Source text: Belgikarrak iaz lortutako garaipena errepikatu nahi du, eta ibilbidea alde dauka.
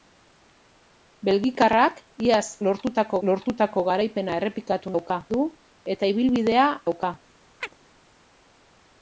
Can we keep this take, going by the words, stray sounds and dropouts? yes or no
no